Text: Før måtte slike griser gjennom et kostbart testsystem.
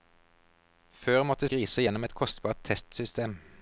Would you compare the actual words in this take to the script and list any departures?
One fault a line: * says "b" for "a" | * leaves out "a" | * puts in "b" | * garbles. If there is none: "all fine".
* leaves out "slike"